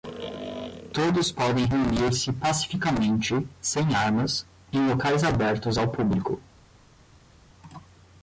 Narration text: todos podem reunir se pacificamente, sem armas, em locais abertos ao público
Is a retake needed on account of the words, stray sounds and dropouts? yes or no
no